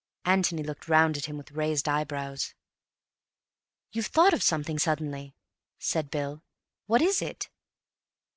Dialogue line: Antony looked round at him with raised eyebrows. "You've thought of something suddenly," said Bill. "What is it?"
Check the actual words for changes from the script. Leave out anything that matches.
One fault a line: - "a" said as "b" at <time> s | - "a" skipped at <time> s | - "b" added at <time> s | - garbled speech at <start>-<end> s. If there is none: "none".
none